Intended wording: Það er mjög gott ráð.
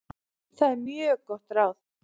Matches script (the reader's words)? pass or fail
pass